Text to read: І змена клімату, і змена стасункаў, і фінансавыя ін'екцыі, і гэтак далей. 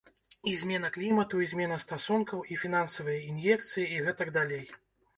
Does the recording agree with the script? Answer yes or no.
yes